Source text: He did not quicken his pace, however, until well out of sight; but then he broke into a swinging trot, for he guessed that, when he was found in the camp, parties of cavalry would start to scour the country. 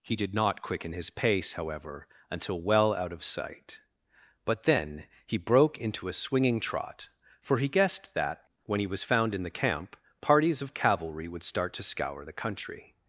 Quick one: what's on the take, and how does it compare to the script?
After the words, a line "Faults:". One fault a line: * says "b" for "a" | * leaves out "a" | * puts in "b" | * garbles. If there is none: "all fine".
He did not quicken his pace, however, until well out of sight; but then he broke into a swinging trot, for he guessed that, when he was found in the camp, parties of cavalry would start to scour the country.
Faults:
all fine